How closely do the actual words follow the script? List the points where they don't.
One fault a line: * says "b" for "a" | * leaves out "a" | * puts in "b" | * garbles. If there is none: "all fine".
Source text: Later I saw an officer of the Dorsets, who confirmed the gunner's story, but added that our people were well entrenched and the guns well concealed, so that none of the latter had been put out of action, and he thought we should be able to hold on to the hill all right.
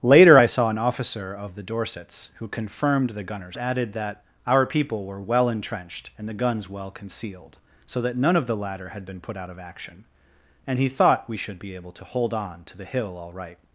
* leaves out "story but"